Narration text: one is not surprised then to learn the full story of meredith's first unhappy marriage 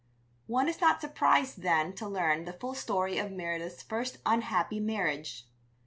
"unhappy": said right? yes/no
yes